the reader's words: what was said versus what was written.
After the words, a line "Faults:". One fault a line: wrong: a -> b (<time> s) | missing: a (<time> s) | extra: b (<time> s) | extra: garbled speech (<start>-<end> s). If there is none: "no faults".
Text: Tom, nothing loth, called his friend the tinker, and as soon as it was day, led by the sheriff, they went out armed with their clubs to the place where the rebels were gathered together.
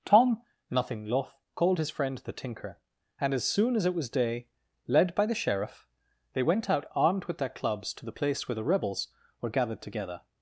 Tom, nothing loth, called his friend the tinker, and as soon as it was day, led by the sheriff, they went out armed with their clubs to the place where the rebels were gathered together.
Faults:
no faults